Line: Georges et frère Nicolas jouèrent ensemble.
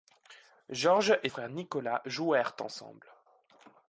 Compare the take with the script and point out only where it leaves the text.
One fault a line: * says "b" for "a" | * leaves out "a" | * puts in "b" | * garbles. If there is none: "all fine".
all fine